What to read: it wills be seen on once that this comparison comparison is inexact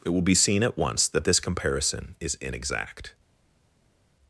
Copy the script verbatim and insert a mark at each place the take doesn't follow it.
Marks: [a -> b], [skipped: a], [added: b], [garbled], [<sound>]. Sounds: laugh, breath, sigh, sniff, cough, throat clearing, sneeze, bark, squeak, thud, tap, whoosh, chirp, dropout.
it [wills -> will] be seen [on -> at] once that this comparison [skipped: comparison] is inexact